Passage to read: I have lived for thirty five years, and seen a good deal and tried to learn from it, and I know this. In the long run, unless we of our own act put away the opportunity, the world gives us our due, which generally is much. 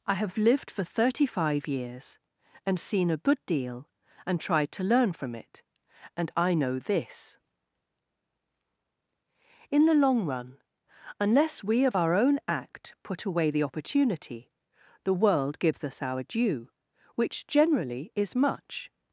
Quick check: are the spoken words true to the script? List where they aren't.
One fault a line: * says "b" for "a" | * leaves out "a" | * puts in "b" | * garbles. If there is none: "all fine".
all fine